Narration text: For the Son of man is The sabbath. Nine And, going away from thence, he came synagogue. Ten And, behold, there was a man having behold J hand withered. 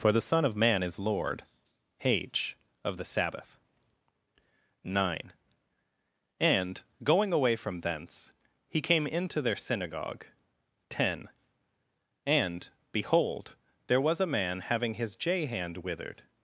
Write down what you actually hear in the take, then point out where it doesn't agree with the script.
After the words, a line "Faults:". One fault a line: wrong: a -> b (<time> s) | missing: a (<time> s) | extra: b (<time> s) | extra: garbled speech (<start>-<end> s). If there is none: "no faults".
For the Son of man is Lord h of the sabbath. Nine And, going away from thence, he came into their synagogue. Ten And, behold, there was a man having his J hand withered.
Faults:
extra: Lord h of (1.0 s)
extra: into their (9.1 s)
wrong: behold -> his (14.9 s)